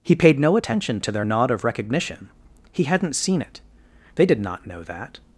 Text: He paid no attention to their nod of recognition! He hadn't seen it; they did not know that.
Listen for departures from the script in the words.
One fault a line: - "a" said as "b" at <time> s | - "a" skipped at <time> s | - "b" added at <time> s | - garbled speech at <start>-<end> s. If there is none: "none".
none